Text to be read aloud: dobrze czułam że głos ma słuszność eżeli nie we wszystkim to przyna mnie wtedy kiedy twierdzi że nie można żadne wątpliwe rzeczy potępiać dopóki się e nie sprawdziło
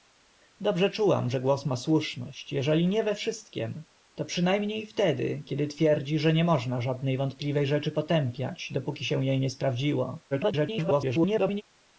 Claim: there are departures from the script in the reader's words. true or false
true